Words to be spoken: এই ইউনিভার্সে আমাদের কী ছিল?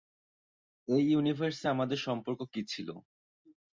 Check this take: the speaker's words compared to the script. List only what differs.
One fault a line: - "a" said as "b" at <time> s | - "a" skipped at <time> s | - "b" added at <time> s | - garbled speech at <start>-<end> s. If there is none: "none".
- "সম্পর্ক" added at 2.1 s